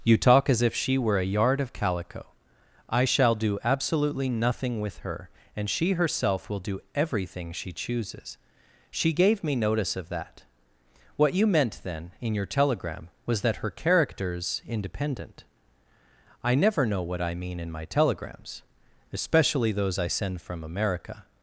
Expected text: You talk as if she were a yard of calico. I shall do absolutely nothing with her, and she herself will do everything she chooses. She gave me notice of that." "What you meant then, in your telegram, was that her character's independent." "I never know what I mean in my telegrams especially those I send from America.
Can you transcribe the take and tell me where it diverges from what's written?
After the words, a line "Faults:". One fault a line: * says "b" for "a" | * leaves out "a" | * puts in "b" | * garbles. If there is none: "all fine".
You talk as if she were a yard of calico. I shall do absolutely nothing with her, and she herself will do everything she chooses. She gave me notice of that." "What you meant then, in your telegram, was that her character's independent." "I never know what I mean in my telegrams especially those I send from America.
Faults:
all fine